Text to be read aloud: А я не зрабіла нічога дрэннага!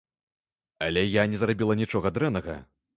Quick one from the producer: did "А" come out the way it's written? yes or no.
no